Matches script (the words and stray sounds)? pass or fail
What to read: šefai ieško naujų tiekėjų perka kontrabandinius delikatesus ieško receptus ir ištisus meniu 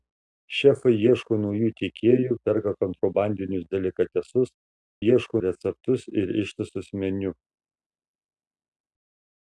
pass